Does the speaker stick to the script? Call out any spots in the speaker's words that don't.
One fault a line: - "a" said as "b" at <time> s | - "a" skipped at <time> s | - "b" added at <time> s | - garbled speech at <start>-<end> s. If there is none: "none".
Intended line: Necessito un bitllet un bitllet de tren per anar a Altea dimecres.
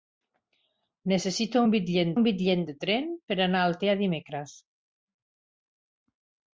none